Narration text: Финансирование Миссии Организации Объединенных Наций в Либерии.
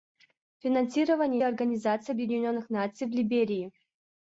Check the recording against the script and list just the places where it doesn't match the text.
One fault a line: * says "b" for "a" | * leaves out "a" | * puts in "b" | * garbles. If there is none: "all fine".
* leaves out "Миссии"